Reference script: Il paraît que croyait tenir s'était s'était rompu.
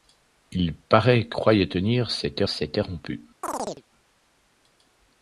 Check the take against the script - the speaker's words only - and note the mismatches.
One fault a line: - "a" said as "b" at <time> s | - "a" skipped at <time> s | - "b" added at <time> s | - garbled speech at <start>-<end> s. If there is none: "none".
none